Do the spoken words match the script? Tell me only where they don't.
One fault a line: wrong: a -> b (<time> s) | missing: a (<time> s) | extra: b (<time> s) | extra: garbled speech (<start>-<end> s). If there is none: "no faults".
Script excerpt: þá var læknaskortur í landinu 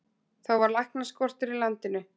no faults